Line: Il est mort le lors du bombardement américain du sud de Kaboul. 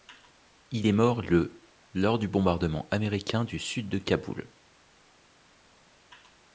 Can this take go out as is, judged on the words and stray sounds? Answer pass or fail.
pass